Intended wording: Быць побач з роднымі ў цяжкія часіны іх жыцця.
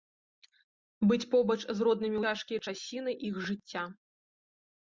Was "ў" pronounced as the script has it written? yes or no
no